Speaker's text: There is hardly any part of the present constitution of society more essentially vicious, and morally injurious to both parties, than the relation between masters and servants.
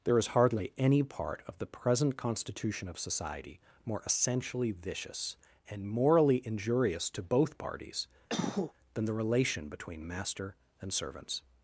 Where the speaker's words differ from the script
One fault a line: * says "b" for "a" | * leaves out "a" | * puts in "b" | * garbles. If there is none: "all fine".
* says "master" for "masters"